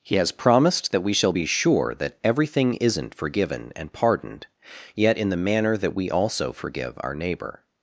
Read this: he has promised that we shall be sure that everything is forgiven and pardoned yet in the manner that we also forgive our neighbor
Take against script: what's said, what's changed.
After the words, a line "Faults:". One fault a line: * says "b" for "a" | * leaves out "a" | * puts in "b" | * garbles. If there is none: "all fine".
he has promised that we shall be sure that everything isn't forgiven and pardoned yet in the manner that we also forgive our neighbor
Faults:
* says "isn't" for "is"